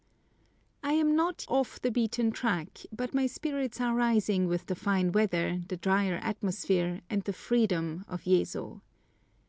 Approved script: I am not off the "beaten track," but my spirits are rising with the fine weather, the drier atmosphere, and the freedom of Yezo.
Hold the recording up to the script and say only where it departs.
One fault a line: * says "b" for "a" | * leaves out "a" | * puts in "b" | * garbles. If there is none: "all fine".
all fine